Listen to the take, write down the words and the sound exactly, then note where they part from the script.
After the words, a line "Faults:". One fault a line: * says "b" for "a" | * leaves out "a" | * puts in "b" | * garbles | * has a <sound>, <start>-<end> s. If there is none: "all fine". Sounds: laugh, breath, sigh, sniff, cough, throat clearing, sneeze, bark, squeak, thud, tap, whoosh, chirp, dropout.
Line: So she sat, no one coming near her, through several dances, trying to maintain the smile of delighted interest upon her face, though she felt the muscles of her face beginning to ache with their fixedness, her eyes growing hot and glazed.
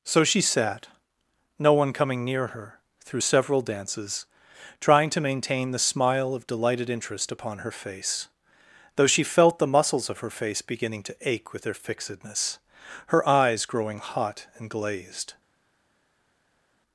So she sat, no one coming near her, through several dances, trying to maintain the smile of delighted interest upon her face, though she felt the muscles of her face beginning to ache with their fixedness, her eyes growing hot and glazed.
Faults:
all fine